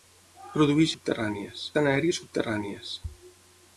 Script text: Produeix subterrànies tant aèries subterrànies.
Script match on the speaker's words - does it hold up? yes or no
yes